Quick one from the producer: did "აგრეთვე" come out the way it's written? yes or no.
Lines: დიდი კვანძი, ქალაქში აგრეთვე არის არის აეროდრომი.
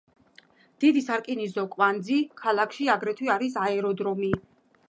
yes